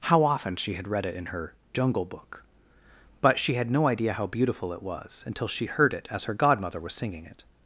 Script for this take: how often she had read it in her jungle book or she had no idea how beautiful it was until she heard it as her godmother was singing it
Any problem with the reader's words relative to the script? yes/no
yes